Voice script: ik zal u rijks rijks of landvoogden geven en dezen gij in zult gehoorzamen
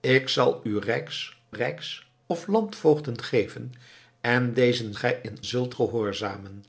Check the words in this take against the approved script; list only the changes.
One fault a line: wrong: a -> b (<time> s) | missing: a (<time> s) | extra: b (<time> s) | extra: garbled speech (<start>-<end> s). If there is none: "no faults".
no faults